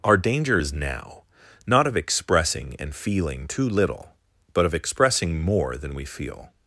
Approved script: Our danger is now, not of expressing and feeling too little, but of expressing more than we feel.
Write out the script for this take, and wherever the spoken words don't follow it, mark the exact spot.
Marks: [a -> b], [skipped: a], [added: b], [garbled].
Our danger is now, not of expressing and feeling too little, but of expressing more than we feel.